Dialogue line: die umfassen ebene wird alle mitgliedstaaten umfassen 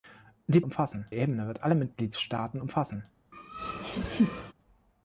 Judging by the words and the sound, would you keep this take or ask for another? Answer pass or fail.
fail